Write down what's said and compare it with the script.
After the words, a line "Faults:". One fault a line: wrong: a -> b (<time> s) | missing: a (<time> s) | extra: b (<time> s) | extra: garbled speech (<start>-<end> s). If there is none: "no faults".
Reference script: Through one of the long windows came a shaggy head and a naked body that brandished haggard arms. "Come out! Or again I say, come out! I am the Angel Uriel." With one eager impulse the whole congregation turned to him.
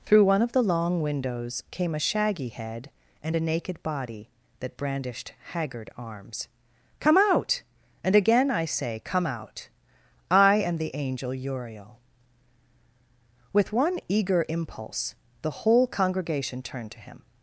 Through one of the long windows came a shaggy head and a naked body that brandished haggard arms. "Come out! And again I say, come out! I am the Angel Uriel." With one eager impulse the whole congregation turned to him.
Faults:
wrong: Or -> And (8.0 s)